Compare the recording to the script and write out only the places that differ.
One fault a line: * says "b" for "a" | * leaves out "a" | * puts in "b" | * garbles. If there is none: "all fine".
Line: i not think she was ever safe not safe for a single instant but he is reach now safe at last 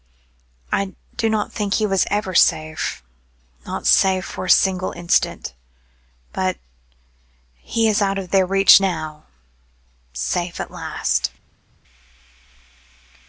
* puts in "do"
* says "he" for "she"
* puts in "out of their"